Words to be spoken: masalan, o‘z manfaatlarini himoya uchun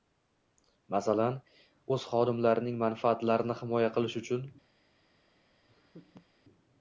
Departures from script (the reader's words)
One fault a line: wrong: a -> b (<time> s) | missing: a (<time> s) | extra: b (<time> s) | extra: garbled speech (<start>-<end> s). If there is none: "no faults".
extra: xodimlarining (2.1 s)
extra: qilish (4.0 s)